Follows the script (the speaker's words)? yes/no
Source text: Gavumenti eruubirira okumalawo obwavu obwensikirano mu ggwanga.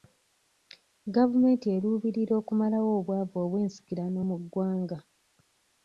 yes